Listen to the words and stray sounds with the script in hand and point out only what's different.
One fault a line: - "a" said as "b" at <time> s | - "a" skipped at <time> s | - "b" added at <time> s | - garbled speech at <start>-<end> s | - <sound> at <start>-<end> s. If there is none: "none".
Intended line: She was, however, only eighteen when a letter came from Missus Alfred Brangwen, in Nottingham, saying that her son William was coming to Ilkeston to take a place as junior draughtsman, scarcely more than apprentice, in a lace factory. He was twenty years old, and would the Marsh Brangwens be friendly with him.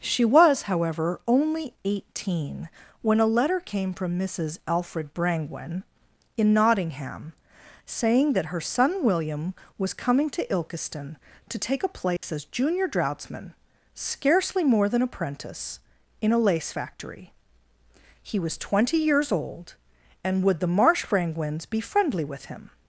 - dropout at 12.2-12.2 s